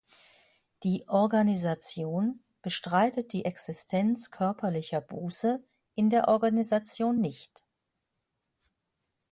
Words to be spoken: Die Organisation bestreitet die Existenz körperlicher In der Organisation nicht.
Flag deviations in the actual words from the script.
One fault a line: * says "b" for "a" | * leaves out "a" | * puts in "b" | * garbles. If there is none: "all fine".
* puts in "Buße"